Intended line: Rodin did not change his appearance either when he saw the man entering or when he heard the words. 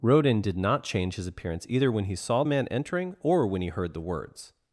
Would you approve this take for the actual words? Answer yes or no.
no